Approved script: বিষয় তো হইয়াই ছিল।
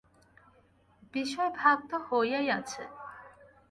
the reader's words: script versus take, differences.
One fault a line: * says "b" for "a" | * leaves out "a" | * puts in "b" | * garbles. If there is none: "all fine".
* puts in "ভাগ"
* says "আছে" for "ছিল"